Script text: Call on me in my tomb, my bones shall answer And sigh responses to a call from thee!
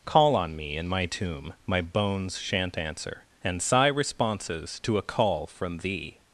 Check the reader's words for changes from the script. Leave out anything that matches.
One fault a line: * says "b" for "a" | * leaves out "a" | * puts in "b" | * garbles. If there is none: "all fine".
* says "shan't" for "shall"